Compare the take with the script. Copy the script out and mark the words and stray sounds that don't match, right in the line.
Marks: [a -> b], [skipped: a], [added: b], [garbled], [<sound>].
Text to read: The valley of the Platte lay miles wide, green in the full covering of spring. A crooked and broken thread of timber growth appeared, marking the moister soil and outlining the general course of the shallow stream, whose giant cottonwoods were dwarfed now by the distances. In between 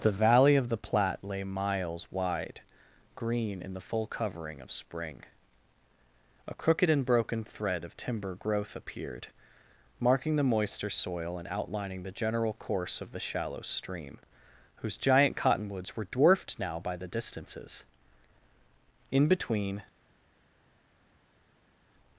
The valley of the Platte lay miles wide, green in the full covering of spring. A crooked and broken thread of timber growth appeared, marking the moister soil and outlining the general course of the shallow stream, whose giant cottonwoods were dwarfed now by the distances. In between